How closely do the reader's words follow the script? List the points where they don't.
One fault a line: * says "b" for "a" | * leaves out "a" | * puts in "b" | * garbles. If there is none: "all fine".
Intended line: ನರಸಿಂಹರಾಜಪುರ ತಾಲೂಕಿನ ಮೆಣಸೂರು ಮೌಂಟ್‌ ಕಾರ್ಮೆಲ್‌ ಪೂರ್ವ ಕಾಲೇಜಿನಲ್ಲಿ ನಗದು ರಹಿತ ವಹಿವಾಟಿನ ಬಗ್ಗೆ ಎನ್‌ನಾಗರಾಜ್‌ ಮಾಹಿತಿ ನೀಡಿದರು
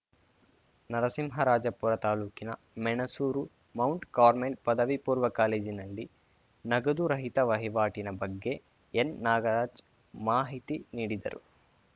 * puts in "ಪದವಿ"